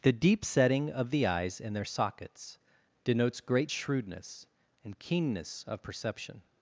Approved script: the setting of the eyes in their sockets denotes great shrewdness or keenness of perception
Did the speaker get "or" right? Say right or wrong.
wrong